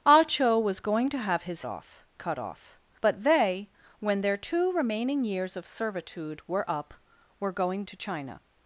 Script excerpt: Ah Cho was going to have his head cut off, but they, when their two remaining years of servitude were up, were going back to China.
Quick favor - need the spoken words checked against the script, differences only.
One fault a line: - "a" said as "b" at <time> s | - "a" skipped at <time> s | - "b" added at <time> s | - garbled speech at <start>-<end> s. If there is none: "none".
- "head" said as "off" at 1.7 s
- "back" skipped at 7.8 s